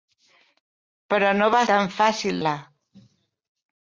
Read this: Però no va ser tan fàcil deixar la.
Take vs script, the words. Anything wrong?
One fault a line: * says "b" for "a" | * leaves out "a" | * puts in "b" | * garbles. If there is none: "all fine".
* leaves out "ser"
* leaves out "deixar"